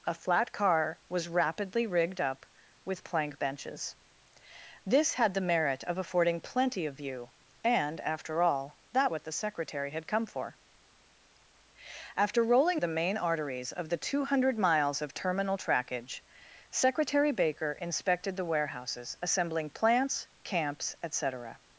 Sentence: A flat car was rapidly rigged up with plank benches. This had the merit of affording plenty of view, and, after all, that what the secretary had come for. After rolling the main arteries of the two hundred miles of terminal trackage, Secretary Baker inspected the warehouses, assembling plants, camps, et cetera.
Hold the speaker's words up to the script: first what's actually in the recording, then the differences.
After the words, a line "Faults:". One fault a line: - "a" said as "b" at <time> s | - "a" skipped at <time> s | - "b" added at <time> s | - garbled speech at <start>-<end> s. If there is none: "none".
A flat car was rapidly rigged up with plank benches. This had the merit of affording plenty of view, and, after all, that what the secretary had come for. After rolling the main arteries of the two hundred miles of terminal trackage, Secretary Baker inspected the warehouses, assembling plants, camps, et cetera.
Faults:
none